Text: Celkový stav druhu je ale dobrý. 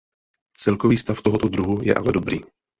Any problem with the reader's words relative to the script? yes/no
yes